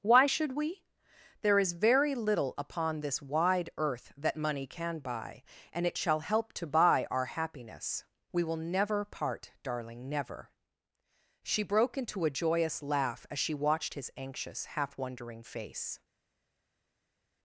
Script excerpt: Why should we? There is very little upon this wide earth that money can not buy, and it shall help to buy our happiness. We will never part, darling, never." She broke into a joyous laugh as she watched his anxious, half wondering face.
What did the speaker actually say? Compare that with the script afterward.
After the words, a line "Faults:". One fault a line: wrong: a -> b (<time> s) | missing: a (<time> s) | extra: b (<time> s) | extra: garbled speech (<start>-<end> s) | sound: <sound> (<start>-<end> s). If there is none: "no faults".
Why should we? There is very little upon this wide earth that money can buy, and it shall help to buy our happiness. We will never part, darling, never." She broke into a joyous laugh as she watched his anxious, half wondering face.
Faults:
missing: not (5.0 s)